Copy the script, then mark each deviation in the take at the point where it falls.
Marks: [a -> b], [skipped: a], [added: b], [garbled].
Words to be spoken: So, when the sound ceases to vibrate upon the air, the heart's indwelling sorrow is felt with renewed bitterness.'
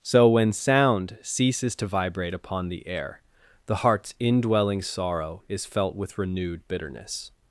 So, when [skipped: the] sound ceases to vibrate upon the air, the heart's indwelling sorrow is felt with renewed bitterness.'